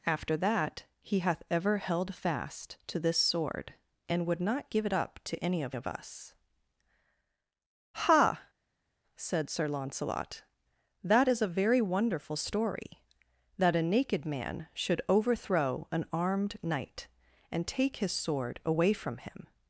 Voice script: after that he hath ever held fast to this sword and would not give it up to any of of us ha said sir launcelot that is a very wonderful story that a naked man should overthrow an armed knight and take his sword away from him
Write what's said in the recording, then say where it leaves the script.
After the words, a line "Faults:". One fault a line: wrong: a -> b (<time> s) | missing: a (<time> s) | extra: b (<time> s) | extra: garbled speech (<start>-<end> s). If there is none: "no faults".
after that he hath ever held fast to this sword and would not give it up to any of of us ha said sir launcelot that is a very wonderful story that a naked man should overthrow an armed knight and take his sword away from him
Faults:
no faults